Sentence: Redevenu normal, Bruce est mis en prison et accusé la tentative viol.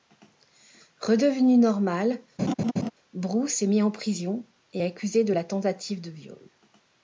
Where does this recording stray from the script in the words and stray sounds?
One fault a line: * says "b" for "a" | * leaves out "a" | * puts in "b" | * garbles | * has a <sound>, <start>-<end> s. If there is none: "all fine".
* has a laugh, 2.4-2.9 s
* puts in "de"
* puts in "de"